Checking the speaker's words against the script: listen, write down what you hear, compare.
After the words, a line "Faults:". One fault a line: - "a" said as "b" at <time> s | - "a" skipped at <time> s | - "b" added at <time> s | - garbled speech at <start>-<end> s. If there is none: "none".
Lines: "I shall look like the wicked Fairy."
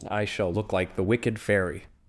"I shall look like the wicked Fairy."
Faults:
none